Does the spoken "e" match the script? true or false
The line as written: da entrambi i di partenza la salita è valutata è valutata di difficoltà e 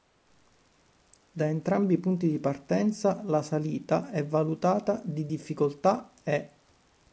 true